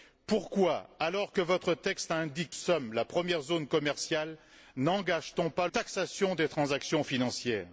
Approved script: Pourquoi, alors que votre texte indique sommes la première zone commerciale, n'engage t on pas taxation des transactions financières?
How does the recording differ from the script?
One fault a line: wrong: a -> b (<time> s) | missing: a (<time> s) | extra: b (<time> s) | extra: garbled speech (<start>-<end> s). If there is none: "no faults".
no faults